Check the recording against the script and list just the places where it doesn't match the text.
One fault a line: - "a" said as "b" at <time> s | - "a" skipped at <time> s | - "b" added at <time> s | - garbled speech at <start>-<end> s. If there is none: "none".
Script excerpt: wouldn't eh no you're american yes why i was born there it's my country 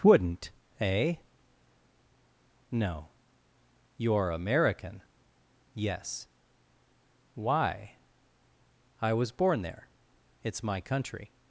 none